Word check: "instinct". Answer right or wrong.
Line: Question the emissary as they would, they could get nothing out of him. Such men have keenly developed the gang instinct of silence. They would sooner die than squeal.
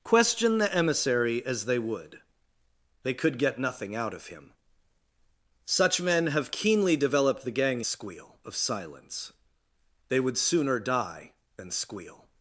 wrong